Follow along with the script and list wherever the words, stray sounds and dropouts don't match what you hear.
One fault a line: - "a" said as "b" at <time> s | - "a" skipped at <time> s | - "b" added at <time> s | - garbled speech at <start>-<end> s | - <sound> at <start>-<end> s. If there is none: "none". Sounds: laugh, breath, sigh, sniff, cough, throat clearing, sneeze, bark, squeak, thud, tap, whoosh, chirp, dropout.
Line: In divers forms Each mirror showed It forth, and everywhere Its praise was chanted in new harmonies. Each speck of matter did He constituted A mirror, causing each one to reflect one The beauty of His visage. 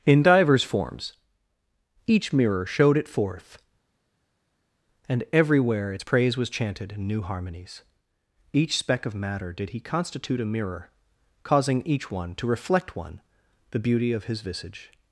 - "constituted" said as "constitute" at 9.8 s